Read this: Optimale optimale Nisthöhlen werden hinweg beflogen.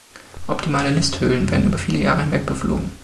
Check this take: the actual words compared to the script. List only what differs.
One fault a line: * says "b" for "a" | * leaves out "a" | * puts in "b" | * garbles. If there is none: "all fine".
* leaves out "optimale"
* puts in "über viele Jahre"